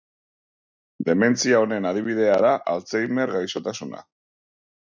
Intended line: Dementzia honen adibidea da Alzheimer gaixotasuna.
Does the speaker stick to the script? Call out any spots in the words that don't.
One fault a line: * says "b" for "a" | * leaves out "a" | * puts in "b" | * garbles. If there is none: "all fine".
all fine